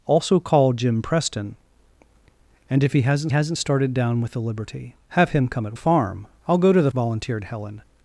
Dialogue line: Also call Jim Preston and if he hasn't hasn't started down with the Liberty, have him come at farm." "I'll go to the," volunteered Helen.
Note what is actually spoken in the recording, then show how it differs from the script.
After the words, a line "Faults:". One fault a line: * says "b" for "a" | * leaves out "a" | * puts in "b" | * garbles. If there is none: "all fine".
Also call Jim Preston and if he hasn't hasn't started down with the Liberty, have him come at farm." "I'll go to the," volunteered Helen.
Faults:
all fine